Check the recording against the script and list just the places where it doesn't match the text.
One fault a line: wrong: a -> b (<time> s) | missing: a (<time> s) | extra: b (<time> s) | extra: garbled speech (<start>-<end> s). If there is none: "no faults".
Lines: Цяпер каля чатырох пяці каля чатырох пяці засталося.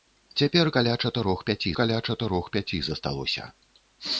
no faults